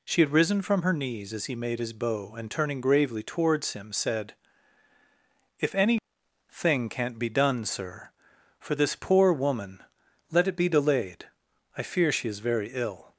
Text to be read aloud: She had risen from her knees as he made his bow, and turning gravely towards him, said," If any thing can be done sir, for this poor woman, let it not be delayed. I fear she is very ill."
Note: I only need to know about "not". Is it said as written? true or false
false